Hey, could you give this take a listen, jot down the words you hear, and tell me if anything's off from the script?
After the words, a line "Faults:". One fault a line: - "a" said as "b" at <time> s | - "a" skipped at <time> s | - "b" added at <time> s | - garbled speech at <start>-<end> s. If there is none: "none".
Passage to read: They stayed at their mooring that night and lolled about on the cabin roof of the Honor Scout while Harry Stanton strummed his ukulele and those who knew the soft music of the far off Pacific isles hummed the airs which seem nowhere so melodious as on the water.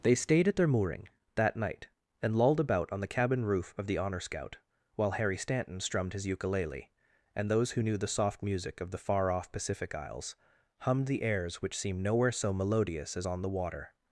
They stayed at their mooring that night and lolled about on the cabin roof of the Honor Scout while Harry Stanton strummed his ukulele and those who knew the soft music of the far off Pacific isles hummed the airs which seem nowhere so melodious as on the water.
Faults:
none